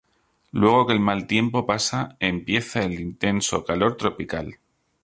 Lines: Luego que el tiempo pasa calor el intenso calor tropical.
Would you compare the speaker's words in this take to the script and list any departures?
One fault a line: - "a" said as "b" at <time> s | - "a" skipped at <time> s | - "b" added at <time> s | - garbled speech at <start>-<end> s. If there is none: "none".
- "mal" added at 1.0 s
- "calor" said as "empieza" at 2.2 s